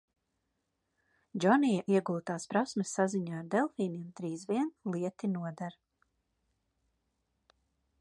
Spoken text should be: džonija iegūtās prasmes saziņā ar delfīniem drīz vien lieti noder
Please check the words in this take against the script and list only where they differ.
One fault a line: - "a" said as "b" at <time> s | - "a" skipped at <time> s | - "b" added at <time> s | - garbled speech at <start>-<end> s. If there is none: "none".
none